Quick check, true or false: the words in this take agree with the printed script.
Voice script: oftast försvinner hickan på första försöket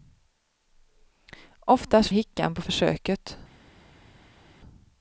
false